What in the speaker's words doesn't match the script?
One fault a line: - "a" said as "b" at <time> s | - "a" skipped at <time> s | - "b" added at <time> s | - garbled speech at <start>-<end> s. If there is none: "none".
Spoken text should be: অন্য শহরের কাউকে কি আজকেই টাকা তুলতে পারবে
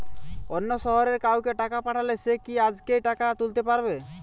- "টাকা পাঠালে সে" added at 1.6 s